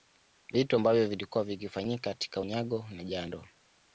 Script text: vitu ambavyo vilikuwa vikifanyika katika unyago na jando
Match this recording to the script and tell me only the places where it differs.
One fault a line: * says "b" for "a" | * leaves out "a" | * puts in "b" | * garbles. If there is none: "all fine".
all fine